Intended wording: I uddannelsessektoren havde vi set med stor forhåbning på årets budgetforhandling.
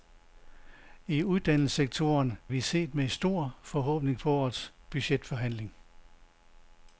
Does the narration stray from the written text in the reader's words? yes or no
yes